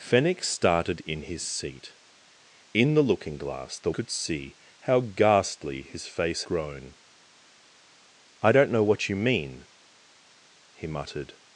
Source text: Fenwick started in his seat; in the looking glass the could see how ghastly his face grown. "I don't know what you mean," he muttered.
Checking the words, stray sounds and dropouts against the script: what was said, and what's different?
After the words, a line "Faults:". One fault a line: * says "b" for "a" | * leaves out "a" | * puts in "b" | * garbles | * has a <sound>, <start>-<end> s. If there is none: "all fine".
Fenwick started in his seat; in the looking glass the could see how ghastly his face grown. "I don't know what you mean," he muttered.
Faults:
all fine